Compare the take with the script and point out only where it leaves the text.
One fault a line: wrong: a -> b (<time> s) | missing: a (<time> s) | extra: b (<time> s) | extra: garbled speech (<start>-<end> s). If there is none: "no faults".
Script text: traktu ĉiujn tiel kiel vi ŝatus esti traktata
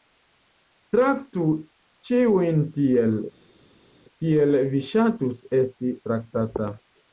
no faults